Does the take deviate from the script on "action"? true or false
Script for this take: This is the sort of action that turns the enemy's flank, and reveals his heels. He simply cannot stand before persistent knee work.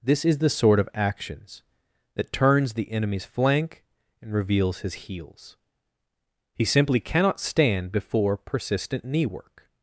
true